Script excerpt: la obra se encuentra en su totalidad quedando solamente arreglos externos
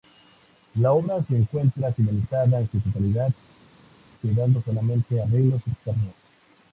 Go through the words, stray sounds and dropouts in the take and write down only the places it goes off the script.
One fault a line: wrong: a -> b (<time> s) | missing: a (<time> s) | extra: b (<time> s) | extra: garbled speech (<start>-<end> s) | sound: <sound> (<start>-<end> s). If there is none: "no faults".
extra: finalizada (1.9 s)